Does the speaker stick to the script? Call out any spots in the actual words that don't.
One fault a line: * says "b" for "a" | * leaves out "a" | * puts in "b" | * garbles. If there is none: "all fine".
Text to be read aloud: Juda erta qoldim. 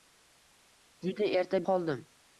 all fine